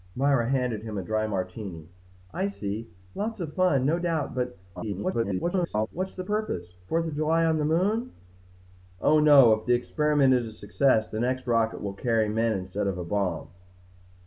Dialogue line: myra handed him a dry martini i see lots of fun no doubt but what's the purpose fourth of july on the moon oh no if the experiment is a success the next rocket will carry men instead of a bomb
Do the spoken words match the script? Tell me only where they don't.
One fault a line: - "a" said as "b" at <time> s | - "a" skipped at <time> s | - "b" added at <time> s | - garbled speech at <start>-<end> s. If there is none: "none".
- garbled speech at 4.8-5.9 s